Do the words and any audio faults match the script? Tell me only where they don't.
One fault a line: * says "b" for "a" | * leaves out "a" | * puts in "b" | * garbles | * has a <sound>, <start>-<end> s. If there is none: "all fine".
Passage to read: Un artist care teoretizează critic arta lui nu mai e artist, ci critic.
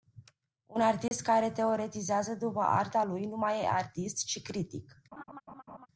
* has a dropout, 1.1-1.1 s
* says "după" for "critic"
* has a laugh, 5.1-5.9 s